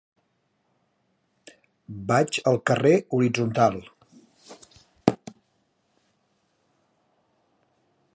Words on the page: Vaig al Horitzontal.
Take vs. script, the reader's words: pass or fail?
fail